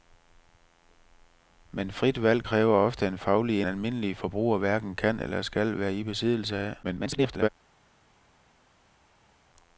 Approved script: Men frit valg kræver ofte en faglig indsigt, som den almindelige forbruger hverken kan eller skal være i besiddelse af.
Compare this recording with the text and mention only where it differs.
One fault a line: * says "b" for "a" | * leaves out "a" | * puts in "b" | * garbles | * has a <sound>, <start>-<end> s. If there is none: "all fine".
* leaves out "indsigt som den"
* garbles